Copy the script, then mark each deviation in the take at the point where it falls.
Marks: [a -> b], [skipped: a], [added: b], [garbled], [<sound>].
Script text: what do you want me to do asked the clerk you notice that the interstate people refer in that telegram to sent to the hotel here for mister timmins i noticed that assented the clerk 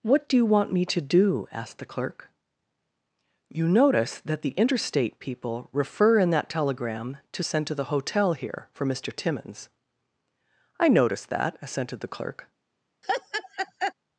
what do you want me to do asked the clerk you notice that the interstate people refer in that telegram to sent to the hotel here for mister timmins i noticed that assented the clerk [laugh]